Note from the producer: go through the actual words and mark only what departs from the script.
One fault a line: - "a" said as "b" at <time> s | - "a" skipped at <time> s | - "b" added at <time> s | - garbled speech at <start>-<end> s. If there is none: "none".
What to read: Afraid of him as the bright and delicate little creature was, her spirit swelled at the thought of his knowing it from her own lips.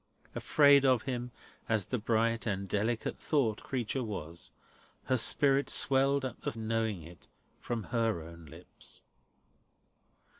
- "little" said as "thought" at 3.2 s
- "thought of his" skipped at 6.5 s